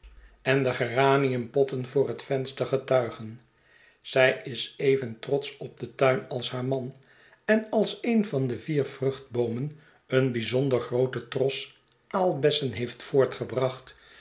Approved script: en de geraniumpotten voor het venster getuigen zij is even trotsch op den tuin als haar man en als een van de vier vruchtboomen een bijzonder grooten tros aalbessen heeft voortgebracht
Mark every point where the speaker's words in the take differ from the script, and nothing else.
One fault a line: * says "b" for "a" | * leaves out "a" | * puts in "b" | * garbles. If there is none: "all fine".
all fine